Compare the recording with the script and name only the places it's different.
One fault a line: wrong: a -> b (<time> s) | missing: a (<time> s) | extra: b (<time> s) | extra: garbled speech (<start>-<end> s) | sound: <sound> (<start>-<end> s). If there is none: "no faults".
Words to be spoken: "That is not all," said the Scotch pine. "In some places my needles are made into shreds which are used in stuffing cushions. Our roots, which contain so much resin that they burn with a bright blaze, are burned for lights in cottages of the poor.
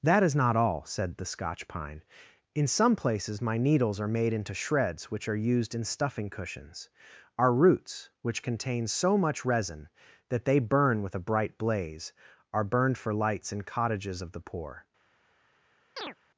sound: chirp (16.0-16.2 s)